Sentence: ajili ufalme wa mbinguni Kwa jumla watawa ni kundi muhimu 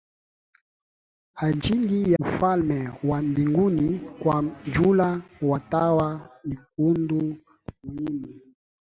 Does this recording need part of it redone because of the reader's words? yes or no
no